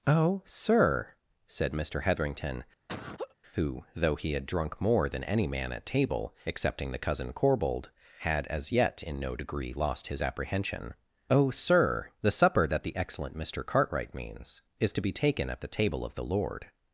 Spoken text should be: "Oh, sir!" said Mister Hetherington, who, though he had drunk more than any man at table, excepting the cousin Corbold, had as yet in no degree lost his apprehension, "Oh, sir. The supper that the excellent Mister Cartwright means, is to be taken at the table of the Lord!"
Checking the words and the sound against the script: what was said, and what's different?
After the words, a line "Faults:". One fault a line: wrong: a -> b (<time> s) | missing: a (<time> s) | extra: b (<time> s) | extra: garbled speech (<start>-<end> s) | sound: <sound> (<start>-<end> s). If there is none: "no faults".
"Oh, sir!" said Mister Hetherington, who, though he had drunk more than any man at table, excepting the cousin Corbold, had as yet in no degree lost his apprehension, "Oh, sir. The supper that the excellent Mister Cartwright means, is to be taken at the table of the Lord!"
Faults:
sound: laugh (2.9-3.3 s)